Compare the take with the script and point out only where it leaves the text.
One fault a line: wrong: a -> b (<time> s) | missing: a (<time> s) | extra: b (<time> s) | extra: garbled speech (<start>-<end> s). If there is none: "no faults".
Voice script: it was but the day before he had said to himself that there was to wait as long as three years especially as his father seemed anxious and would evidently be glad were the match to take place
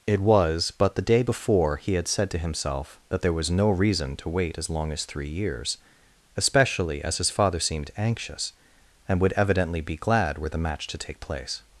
extra: no reason (3.5 s)